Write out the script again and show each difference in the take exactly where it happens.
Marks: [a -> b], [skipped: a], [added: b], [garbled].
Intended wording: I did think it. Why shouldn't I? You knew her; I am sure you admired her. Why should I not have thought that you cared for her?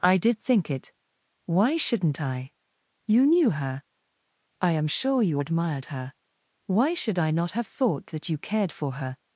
I did think it. Why shouldn't I? You knew her; I am sure you admired her. Why should I not have thought that you cared for her?